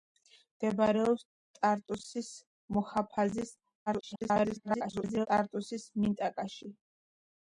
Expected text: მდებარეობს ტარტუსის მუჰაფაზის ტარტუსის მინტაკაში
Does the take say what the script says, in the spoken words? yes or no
no